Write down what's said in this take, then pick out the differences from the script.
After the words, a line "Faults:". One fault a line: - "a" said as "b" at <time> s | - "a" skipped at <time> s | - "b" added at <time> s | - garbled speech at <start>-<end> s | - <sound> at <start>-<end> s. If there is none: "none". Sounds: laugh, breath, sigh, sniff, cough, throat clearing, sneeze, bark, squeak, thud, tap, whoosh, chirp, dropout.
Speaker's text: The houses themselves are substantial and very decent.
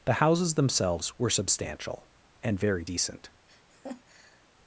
The houses themselves were substantial and very decent.
Faults:
- "are" said as "were" at 1.2 s
- laugh at 3.5-4.5 s